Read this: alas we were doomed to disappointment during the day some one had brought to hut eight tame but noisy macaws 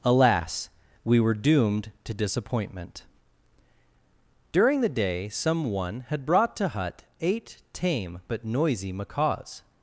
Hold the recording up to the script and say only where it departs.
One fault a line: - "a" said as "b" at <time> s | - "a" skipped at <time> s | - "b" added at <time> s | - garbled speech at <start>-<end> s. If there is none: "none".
none